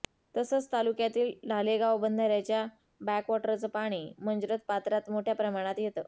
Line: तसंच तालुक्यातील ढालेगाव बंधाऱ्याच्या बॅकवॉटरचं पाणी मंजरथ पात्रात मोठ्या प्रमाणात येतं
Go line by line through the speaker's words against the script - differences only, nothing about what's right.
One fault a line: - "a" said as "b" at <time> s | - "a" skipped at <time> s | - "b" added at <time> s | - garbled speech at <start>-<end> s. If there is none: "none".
none